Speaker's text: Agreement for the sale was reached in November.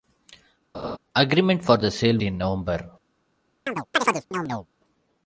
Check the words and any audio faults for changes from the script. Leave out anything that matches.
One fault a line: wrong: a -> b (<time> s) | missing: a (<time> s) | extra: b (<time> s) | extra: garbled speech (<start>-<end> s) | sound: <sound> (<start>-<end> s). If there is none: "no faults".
sound: laugh (0.7-1.0 s)
missing: was reached (2.2 s)
sound: chirp (3.7-4.7 s)